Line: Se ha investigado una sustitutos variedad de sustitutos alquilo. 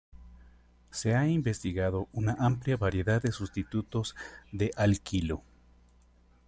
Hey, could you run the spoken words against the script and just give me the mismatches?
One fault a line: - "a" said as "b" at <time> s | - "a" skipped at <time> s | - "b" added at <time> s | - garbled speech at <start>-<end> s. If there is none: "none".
- "sustitutos" said as "amplia" at 2.4 s
- "de" added at 4.5 s